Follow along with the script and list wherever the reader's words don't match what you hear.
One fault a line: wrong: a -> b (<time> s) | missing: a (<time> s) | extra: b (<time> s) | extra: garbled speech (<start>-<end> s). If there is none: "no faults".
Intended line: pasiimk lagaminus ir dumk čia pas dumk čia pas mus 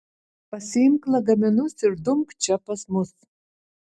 missing: dumk čia pas (2.8 s)